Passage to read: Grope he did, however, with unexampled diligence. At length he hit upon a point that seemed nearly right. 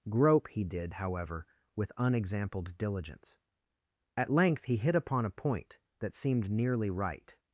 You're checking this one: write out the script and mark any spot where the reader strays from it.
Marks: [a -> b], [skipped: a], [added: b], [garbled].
Grope he did, however, with unexampled diligence. At length he hit upon a point that seemed nearly right.